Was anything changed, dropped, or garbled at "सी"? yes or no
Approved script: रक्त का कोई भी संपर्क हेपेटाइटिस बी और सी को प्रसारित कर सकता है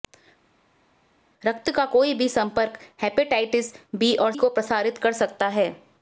yes